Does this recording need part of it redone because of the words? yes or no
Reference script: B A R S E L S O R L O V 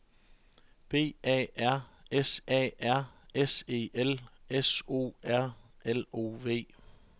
yes